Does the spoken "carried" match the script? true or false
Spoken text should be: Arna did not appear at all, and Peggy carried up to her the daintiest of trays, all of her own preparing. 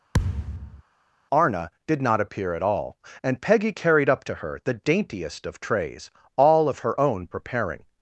true